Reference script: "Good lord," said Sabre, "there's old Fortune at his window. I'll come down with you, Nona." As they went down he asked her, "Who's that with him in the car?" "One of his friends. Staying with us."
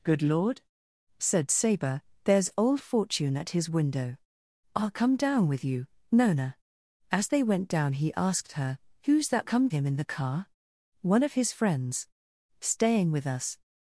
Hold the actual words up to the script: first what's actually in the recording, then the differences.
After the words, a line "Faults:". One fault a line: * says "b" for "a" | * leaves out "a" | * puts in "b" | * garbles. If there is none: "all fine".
"Good lord," said Sabre, "there's old Fortune at his window. I'll come down with you, Nona." As they went down he asked her, "Who's that come him in the car?" "One of his friends. Staying with us."
Faults:
* says "come" for "with"